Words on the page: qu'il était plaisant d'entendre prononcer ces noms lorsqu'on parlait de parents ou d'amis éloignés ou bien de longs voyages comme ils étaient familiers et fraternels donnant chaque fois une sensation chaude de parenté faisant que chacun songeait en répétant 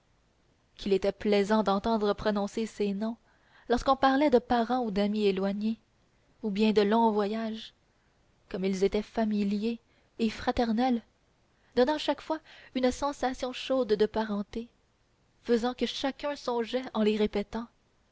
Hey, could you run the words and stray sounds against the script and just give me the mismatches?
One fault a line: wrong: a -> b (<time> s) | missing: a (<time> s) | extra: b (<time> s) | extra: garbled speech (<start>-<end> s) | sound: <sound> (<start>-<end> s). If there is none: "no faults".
extra: les (17.0 s)